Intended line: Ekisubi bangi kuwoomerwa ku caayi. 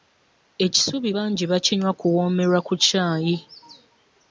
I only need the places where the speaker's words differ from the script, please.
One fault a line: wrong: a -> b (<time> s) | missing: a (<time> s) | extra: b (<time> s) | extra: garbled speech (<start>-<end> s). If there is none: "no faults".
extra: bakinywa (1.5 s)